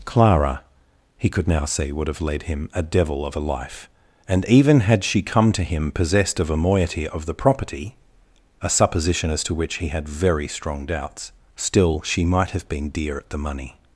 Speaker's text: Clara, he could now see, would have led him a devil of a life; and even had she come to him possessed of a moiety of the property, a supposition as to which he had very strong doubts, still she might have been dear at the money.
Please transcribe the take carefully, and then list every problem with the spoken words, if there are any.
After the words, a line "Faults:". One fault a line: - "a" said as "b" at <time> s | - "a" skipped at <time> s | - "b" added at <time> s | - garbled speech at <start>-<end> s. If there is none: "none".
Clara, he could now see, would have led him a devil of a life; and even had she come to him possessed of a moiety of the property, a supposition as to which he had very strong doubts, still she might have been dear at the money.
Faults:
none